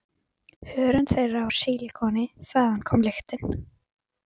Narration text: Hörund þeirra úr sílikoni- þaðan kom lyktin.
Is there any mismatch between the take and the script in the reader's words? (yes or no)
no